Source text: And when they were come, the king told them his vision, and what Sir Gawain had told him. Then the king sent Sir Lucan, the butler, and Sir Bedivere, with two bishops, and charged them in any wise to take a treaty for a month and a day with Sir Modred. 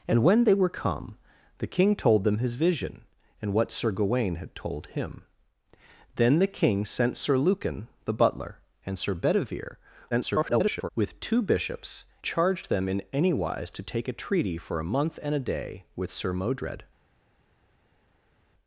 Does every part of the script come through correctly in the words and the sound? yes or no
no